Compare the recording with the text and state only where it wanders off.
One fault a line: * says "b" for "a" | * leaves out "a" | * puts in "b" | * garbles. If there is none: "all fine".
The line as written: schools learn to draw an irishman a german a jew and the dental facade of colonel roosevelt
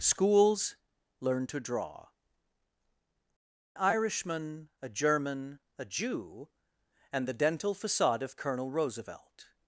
* leaves out "an"